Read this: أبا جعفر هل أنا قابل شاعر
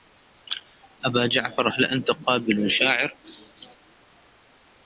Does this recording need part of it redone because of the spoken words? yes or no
yes